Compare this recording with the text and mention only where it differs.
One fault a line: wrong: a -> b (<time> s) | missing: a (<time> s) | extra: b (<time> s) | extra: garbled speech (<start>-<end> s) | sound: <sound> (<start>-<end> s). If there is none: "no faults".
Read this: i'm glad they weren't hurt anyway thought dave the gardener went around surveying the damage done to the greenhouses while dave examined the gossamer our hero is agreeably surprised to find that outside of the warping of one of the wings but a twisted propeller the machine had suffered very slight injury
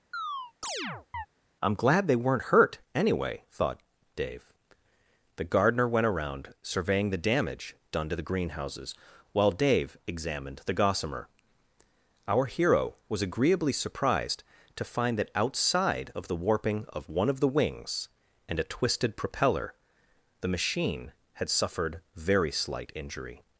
sound: chirp (0.1-1.3 s)
wrong: is -> was (13.1 s)
wrong: but -> and (18.5 s)